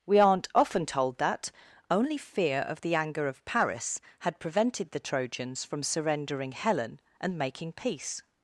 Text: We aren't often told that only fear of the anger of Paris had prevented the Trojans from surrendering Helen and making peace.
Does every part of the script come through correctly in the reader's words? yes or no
yes